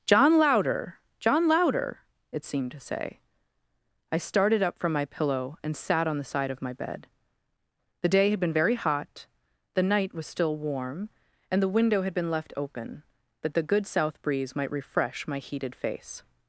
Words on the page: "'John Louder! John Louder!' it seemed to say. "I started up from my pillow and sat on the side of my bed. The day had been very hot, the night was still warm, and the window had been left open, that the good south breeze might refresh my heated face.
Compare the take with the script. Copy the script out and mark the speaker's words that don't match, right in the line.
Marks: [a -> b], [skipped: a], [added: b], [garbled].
"'John Louder! John Louder!' it seemed to say. "I started up from my pillow and sat on the side of my bed. The day had been very hot, the night was still warm, and the window had been left open, that the good south breeze might refresh my heated face.